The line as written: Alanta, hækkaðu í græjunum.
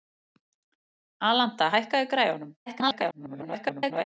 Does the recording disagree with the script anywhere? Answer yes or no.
yes